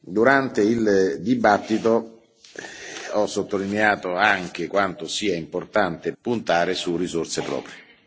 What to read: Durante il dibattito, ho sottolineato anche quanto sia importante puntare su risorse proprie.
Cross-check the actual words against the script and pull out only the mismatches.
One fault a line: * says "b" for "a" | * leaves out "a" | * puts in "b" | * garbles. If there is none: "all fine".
all fine